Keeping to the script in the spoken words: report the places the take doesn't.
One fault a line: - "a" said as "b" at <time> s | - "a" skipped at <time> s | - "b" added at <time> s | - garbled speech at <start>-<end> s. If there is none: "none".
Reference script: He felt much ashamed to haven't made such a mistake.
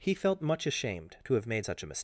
- "haven't" said as "have" at 1.3 s